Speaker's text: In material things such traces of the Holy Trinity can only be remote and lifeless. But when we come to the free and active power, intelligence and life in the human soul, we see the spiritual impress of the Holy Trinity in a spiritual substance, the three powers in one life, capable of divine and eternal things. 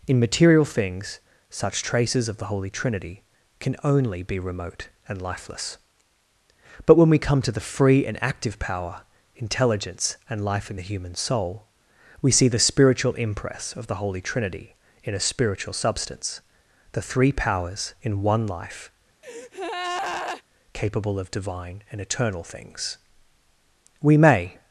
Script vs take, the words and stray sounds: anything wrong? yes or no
yes